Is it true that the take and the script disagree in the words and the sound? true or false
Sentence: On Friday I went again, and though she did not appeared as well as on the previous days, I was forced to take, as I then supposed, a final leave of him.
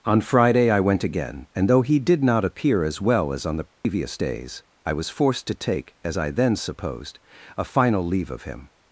true